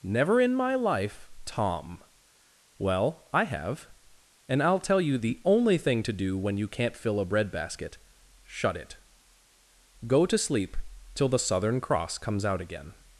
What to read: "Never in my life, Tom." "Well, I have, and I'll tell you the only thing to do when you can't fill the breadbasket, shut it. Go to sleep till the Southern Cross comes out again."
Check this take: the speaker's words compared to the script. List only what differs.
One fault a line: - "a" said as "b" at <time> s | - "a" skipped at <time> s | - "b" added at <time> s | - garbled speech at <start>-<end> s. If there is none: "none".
- "the" said as "a" at 7.2 s